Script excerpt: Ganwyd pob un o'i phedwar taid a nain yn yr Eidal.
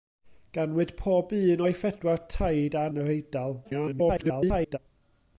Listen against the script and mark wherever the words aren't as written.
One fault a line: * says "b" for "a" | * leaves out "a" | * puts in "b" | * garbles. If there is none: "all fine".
* leaves out "nain"
* garbles